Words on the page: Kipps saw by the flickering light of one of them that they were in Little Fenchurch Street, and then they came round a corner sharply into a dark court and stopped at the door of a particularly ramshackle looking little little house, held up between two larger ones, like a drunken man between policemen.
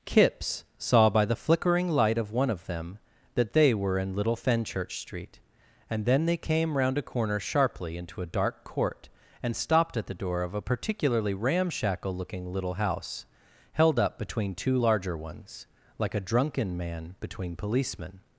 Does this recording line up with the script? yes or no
no